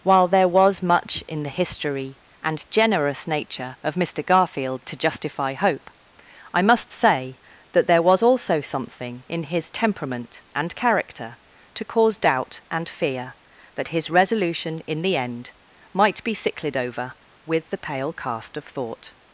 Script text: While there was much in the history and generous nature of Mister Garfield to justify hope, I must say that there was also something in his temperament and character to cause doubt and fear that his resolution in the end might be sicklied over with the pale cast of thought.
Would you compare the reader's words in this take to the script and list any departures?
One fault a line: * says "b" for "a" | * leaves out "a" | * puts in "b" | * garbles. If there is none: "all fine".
all fine